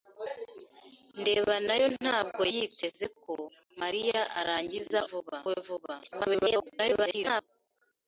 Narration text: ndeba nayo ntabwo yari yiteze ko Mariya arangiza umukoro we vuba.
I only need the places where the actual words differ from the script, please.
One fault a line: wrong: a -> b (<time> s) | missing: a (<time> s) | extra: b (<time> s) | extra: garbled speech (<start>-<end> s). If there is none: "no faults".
missing: yari (2.4 s)
wrong: umukoro -> vuba (5.1 s)
extra: garbled speech (6.0-7.4 s)